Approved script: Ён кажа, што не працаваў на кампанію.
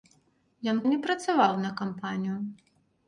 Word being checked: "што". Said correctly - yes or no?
no